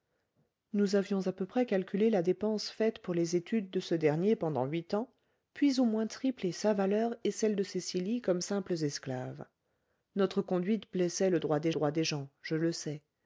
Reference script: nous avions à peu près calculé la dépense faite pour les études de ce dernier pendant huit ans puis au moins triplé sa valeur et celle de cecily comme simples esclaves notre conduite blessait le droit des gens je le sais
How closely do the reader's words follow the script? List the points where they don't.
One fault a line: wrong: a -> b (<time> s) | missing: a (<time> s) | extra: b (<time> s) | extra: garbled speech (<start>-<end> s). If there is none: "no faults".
extra: droit des (11.7 s)